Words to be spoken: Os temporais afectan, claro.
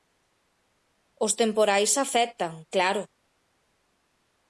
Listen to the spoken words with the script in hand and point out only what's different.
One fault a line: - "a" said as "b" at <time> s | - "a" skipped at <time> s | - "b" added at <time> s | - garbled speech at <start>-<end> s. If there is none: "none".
none